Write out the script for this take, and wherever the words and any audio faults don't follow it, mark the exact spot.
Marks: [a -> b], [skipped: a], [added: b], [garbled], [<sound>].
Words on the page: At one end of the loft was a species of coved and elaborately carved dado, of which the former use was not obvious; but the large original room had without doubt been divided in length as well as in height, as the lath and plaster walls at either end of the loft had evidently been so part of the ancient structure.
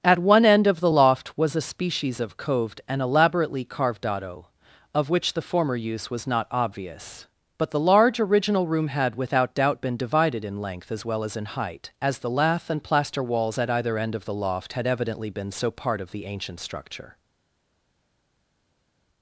At one end of the loft was a species of coved and elaborately carved dado, of which the former use was not obvious; but the large original room had without doubt been divided in length as well as in height, as the lath and plaster walls at either end of the loft had evidently been so part of the ancient structure.